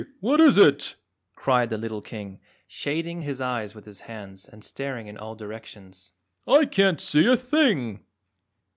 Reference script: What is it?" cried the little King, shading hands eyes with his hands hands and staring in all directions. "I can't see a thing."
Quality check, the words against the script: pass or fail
fail